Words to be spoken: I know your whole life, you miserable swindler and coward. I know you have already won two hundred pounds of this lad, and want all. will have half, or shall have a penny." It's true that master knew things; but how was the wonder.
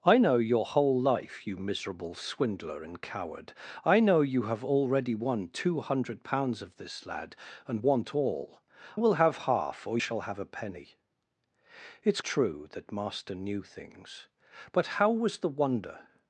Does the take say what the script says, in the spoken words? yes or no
yes